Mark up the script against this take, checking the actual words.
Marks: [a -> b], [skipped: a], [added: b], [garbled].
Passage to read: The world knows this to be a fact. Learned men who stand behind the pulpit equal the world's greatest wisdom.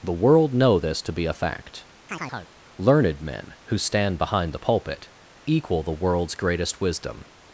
The world [knows -> know] this to be a fact. Learned men who stand behind the pulpit equal the world's greatest wisdom.